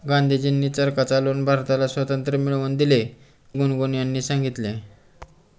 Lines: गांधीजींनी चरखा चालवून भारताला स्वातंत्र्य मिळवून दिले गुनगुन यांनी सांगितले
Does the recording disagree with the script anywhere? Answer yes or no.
no